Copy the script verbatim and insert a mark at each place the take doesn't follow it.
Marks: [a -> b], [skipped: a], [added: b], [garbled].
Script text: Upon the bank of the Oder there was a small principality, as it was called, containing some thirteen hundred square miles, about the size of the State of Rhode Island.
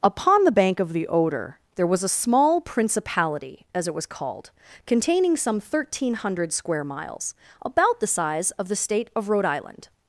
Upon the bank of the Oder there was a small principality, as it was called, containing some thirteen hundred square miles, about the size of the State of Rhode Island.